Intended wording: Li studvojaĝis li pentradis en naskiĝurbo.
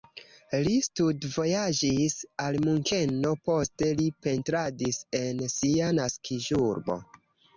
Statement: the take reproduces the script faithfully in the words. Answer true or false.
false